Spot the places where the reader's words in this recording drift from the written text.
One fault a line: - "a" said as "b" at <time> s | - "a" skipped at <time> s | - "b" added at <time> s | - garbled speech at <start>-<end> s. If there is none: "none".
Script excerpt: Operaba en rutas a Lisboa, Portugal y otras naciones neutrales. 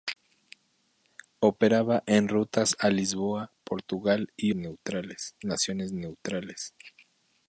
- "otras" said as "neutrales" at 4.5 s